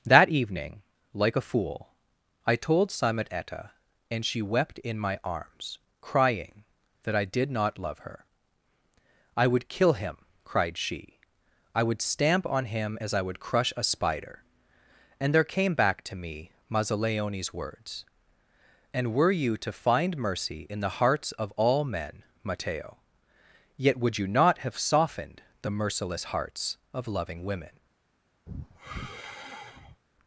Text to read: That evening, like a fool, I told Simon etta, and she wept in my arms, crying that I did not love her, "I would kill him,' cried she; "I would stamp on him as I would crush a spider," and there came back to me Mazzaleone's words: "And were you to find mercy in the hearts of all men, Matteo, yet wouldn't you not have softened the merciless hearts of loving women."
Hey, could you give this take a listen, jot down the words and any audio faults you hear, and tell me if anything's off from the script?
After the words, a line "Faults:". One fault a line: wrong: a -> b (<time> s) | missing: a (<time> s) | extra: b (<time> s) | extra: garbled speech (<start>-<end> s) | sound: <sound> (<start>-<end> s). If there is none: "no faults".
That evening, like a fool, I told Simon etta, and she wept in my arms, crying that I did not love her, "I would kill him,' cried she; "I would stamp on him as I would crush a spider," and there came back to me Mazzaleone's words: "And were you to find mercy in the hearts of all men, Matteo, yet would you not have softened the merciless hearts of loving women."
Faults:
wrong: wouldn't -> would (24.0 s)
sound: sigh (28.5-30.0 s)